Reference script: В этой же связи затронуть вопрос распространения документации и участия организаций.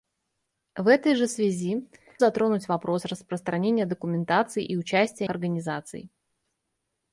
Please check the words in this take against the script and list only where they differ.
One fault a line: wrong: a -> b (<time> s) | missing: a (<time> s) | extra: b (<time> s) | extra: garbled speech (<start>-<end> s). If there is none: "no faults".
no faults